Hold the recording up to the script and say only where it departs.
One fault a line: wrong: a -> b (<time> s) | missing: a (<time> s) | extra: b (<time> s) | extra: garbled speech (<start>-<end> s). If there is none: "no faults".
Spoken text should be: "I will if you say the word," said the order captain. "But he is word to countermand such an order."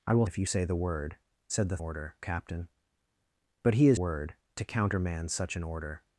no faults